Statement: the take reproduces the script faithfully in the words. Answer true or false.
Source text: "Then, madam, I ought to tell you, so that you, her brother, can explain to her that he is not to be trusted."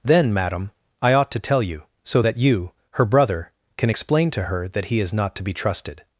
true